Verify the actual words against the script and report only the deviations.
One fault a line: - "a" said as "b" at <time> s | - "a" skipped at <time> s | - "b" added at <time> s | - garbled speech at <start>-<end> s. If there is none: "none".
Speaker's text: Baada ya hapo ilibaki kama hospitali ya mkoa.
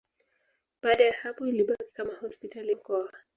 - "ya" skipped at 2.7 s